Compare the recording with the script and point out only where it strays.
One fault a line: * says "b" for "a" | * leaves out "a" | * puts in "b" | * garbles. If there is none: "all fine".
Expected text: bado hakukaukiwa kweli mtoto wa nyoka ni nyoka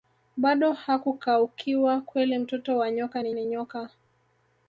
* puts in "ni"